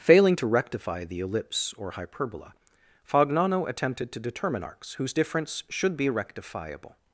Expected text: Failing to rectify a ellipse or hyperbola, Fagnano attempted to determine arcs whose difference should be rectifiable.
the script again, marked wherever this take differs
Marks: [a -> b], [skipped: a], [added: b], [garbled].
Failing to rectify [a -> the] ellipse or hyperbola, Fagnano attempted to determine arcs whose difference should be rectifiable.